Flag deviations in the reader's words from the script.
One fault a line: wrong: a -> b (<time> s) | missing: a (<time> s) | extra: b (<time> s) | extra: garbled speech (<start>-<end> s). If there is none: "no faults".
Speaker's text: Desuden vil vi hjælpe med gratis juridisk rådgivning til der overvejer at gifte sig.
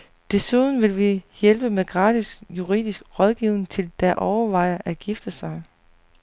no faults